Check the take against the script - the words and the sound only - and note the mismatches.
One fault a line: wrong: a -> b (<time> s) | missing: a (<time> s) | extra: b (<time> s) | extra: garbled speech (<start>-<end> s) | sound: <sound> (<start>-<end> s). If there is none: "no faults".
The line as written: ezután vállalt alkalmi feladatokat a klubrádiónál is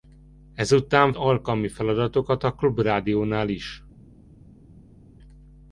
missing: vállalt (1.1 s)